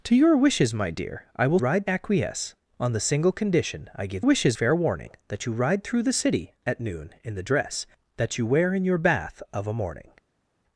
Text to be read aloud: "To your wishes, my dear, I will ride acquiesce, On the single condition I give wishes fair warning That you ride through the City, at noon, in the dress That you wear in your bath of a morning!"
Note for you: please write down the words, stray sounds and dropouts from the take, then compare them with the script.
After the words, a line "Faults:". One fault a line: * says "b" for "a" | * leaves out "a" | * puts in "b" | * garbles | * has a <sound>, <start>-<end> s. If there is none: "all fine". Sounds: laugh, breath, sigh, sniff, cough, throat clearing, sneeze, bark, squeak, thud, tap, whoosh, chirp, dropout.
"To your wishes, my dear, I will ride acquiesce, On the single condition I give wishes fair warning That you ride through the City, at noon, in the dress That you wear in your bath of a morning!"
Faults:
all fine